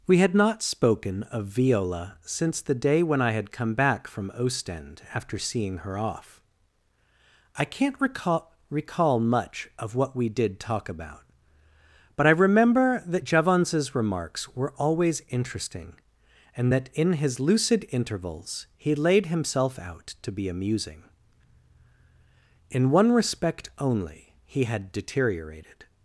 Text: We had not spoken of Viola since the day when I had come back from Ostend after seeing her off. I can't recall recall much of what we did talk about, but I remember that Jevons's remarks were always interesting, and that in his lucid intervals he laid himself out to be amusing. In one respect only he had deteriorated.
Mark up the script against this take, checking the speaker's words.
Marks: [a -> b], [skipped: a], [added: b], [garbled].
We had not spoken of Viola since the day when I had come back from Ostend after seeing her off. I can't recall recall much of what we did talk about, but I remember that Jevons's remarks were always interesting, and that in his lucid intervals he laid himself out to be amusing. In one respect only he had deteriorated.